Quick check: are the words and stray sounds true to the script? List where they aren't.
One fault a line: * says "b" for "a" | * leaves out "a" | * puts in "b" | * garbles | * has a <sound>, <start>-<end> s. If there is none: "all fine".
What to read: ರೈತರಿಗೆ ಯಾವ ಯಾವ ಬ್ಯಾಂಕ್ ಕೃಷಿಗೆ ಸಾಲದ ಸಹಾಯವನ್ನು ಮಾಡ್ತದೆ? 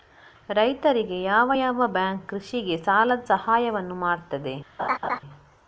* has a laugh, 4.8-5.2 s